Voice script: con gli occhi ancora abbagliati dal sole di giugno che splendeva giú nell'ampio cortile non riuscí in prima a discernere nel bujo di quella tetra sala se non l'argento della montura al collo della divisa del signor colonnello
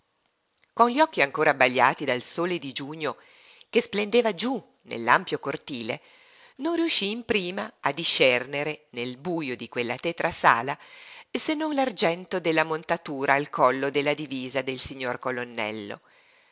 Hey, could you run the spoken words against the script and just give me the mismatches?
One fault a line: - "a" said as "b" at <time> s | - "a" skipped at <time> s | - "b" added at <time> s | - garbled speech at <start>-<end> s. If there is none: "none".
none